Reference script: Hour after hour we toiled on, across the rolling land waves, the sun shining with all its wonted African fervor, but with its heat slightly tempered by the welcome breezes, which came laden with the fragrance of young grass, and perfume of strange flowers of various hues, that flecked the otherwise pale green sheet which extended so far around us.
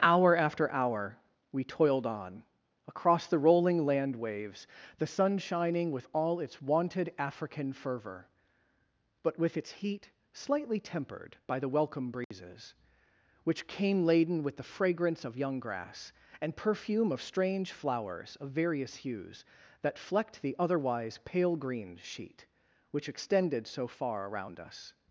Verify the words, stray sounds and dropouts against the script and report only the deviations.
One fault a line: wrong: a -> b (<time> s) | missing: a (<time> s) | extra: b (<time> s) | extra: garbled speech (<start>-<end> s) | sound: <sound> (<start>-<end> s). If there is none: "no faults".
sound: dropout (12.2-12.3 s)